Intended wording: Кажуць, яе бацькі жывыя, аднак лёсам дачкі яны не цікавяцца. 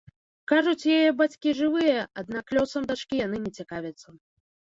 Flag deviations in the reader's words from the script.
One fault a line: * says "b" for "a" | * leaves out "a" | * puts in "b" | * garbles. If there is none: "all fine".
all fine